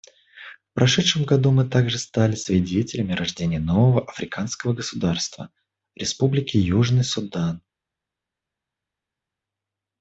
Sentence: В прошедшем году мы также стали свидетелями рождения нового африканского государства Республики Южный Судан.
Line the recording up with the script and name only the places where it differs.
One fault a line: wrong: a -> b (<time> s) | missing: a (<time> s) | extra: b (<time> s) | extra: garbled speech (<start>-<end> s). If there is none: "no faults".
no faults